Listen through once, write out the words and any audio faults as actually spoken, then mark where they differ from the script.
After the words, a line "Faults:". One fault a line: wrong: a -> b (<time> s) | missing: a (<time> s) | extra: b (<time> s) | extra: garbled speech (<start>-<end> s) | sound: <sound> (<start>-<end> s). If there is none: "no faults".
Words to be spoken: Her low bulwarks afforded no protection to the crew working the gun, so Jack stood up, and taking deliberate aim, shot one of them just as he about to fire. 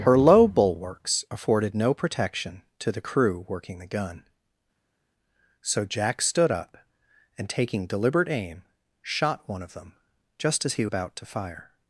Her low bulwarks afforded no protection to the crew working the gun, so Jack stood up, and taking deliberate aim, shot one of them just as he about to fire.
Faults:
no faults